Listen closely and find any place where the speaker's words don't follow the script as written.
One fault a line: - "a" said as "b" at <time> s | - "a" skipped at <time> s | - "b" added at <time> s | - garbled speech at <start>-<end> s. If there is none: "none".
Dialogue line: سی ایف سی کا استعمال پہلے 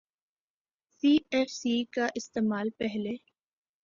none